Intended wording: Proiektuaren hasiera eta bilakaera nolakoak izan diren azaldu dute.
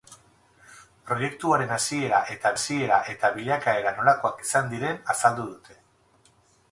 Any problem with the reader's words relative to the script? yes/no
yes